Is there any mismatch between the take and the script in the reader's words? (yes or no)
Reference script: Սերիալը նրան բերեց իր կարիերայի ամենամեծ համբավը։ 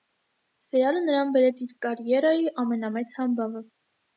no